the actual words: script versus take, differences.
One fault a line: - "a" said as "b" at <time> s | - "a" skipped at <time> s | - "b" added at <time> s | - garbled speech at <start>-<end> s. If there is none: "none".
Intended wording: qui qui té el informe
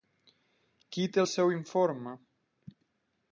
- "qui" skipped at 1.1 s
- "seu" added at 1.3 s